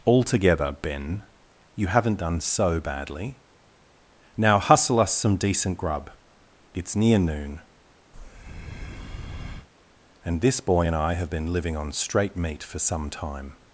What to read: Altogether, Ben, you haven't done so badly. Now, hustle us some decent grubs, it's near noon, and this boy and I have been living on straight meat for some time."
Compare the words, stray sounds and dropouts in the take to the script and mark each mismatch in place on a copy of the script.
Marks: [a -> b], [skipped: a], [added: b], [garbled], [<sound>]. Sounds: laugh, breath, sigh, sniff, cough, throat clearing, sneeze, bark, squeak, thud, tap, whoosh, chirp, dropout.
Altogether, Ben, you haven't done so badly. Now, hustle us some decent [grubs, -> grub] it's near noon, [breath] and this boy and I have been living on straight meat for some time."